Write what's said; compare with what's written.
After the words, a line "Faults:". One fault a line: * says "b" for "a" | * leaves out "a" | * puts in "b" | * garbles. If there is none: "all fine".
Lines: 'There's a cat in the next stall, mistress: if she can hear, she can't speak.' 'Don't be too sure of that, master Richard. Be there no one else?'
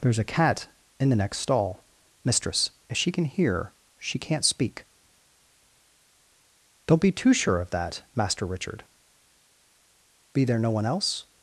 'There's a cat in the next stall, mistress: if she can hear, she can't speak.' 'Don't be too sure of that, master Richard. Be there no one else?'
Faults:
all fine